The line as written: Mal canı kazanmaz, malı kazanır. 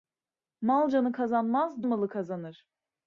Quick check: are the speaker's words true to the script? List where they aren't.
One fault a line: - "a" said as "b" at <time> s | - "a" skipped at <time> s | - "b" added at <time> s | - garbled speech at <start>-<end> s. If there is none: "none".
none